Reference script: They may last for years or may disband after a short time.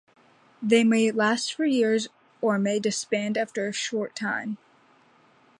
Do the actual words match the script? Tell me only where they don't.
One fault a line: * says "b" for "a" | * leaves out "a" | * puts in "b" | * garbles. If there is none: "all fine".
all fine